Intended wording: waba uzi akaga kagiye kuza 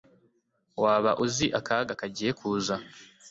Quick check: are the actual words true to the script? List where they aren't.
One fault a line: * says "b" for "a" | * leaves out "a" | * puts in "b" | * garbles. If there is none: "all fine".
all fine